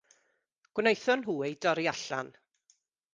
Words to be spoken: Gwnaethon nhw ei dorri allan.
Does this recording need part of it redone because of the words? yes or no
no